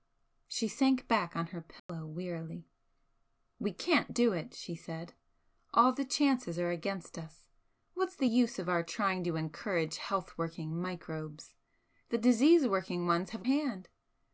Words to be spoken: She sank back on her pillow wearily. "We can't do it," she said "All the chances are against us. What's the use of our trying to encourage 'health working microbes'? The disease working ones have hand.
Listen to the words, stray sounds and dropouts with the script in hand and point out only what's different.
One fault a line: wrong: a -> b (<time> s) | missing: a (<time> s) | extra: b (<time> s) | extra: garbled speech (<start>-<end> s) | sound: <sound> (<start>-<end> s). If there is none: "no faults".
sound: dropout (1.8-1.9 s)